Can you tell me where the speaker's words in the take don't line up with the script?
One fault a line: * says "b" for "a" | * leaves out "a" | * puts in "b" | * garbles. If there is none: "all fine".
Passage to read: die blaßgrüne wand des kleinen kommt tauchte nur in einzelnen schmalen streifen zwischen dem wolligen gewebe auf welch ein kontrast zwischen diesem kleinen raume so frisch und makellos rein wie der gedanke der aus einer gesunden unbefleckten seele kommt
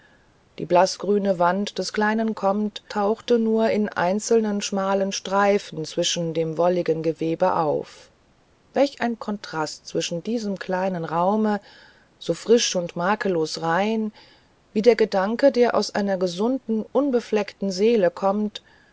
all fine